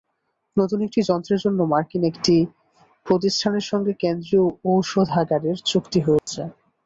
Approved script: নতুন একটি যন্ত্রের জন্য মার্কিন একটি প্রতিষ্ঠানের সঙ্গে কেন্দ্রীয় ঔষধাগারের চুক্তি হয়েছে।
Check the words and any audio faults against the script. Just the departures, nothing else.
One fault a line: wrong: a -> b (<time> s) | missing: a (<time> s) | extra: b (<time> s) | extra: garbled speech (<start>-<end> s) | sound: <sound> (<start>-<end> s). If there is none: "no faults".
sound: dropout (6.2-6.3 s)